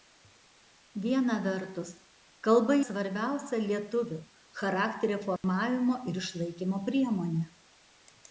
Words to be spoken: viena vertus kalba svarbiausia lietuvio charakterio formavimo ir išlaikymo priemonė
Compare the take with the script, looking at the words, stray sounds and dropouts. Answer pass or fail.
fail